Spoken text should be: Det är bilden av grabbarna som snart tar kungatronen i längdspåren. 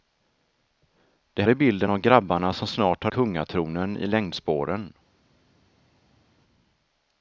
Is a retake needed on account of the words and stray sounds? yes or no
no